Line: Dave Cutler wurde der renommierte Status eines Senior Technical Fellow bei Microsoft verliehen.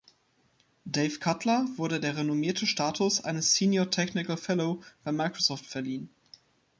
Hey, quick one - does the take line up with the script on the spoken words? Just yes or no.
yes